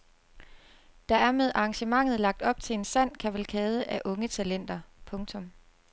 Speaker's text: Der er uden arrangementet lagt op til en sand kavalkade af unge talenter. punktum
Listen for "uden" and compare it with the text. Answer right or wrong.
wrong